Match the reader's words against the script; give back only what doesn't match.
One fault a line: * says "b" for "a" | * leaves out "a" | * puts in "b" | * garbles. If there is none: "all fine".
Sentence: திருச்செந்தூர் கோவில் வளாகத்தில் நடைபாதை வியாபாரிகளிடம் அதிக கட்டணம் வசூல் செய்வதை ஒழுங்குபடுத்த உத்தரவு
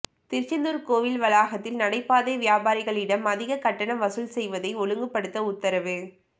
all fine